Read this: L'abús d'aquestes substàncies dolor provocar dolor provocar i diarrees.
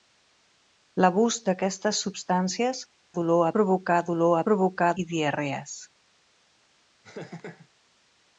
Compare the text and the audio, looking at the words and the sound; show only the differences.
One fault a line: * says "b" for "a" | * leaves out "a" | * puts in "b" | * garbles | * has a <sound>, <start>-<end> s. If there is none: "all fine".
* has a laugh, 7.0-7.7 s